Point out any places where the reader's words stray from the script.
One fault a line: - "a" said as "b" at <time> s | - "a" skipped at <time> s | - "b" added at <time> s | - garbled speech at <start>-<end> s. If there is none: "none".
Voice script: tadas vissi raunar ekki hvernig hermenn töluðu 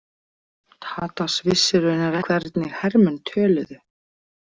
- "ekki" skipped at 2.2 s